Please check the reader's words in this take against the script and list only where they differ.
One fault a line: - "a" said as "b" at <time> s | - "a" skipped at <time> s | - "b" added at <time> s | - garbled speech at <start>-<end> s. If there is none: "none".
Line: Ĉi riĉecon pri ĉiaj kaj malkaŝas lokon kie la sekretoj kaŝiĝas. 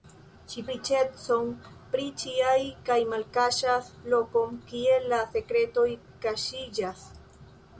none